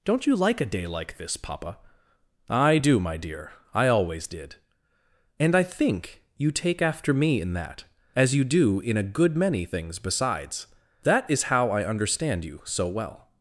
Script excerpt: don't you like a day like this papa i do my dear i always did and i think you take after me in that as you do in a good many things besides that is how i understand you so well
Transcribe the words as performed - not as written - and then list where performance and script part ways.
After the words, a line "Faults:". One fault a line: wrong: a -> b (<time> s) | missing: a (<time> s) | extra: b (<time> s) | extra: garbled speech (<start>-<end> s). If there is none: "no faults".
don't you like a day like this papa i do my dear i always did and i think you take after me in that as you do in a good many things besides that is how i understand you so well
Faults:
no faults